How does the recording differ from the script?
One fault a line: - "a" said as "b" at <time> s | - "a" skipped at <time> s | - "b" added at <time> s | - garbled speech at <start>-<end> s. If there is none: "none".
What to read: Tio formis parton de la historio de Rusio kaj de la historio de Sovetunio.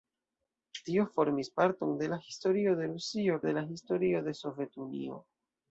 - "kaj" skipped at 3.4 s